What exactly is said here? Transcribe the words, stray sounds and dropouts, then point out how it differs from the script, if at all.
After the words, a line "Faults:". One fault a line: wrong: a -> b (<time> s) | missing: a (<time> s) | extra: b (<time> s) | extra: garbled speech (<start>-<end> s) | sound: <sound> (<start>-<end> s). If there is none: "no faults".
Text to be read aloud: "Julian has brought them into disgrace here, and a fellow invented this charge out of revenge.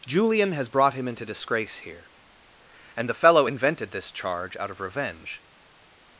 "Julian has brought him into disgrace here, and the fellow invented this charge out of revenge.
Faults:
wrong: them -> him (0.9 s)
wrong: a -> the (3.1 s)